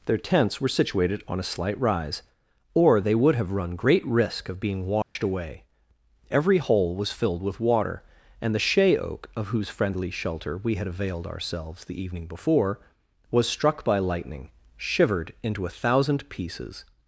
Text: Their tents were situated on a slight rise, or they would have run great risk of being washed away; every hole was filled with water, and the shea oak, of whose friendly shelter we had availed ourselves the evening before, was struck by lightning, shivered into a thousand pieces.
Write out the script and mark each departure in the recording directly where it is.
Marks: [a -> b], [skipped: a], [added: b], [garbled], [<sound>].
Their tents were situated on a slight rise, or they would have run great risk of being washed [dropout] away; every hole was filled with water, and the shea oak, of whose friendly shelter we had availed ourselves the evening before, was struck by lightning, shivered into a thousand pieces.